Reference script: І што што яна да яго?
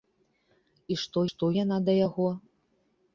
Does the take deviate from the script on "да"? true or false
false